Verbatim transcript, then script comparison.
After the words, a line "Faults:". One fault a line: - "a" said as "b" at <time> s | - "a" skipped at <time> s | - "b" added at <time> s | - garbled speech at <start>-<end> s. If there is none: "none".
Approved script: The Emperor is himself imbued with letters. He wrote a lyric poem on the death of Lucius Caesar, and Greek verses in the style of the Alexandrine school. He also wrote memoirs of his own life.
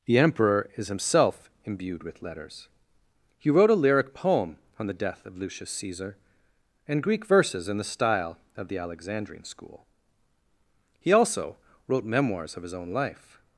The Emperor is himself imbued with letters. He wrote a lyric poem on the death of Lucius Caesar, and Greek verses in the style of the Alexandrine school. He also wrote memoirs of his own life.
Faults:
none